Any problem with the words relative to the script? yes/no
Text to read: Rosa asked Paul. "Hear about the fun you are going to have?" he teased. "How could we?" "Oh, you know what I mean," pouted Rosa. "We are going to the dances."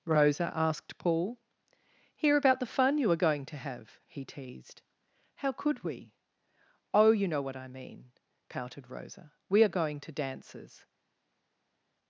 yes